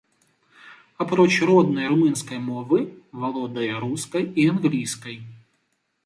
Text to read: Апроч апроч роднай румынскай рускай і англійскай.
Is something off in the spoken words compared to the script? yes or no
yes